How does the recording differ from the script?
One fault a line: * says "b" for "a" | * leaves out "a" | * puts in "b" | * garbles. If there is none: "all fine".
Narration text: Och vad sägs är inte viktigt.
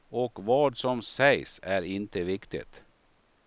* puts in "som"